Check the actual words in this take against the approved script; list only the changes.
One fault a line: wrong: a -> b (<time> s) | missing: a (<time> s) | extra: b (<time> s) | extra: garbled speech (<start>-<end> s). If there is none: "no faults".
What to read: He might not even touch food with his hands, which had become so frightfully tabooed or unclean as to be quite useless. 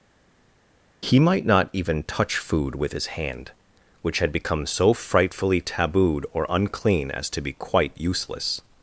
wrong: hands -> hand (3.1 s)